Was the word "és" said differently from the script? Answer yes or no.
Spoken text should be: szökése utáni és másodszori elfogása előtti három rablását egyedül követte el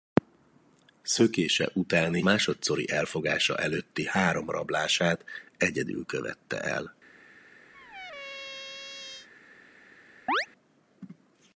yes